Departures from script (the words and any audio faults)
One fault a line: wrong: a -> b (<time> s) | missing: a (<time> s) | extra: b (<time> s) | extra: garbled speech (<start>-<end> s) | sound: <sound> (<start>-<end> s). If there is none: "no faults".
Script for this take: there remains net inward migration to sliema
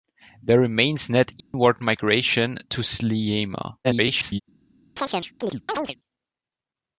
sound: dropout (1.4-1.5 s)
extra: garbled speech (3.8-4.4 s)
sound: chirp (5.0-6.0 s)